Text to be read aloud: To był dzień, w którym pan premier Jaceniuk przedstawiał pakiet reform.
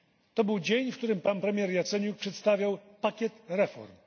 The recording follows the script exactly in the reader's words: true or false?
true